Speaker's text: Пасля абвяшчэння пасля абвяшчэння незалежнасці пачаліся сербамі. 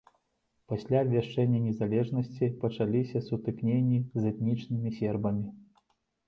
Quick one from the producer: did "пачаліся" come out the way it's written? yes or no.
no